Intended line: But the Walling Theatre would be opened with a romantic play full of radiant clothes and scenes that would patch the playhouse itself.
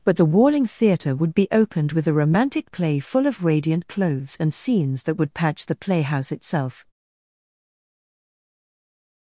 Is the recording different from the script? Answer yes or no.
no